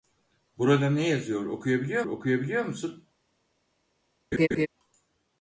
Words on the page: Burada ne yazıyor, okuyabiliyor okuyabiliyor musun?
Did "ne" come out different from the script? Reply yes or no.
no